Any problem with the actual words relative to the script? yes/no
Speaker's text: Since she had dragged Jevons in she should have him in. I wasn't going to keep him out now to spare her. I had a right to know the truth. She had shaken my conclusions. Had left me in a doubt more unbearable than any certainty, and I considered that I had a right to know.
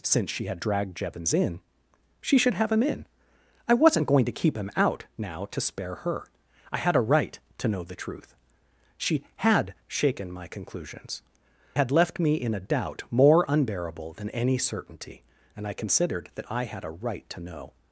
no